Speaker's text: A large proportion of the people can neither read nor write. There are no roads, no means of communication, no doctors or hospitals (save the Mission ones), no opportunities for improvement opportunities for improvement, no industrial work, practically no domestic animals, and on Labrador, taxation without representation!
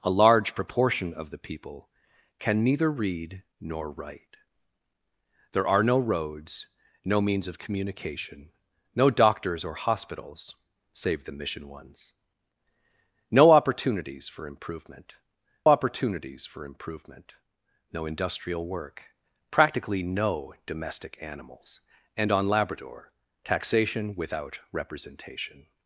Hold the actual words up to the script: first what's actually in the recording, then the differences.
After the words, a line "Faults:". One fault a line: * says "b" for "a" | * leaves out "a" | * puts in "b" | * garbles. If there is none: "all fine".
A large proportion of the people can neither read nor write. There are no roads, no means of communication, no doctors or hospitals (save the Mission ones), no opportunities for improvement opportunities for improvement, no industrial work, practically no domestic animals, and on Labrador, taxation without representation!
Faults:
all fine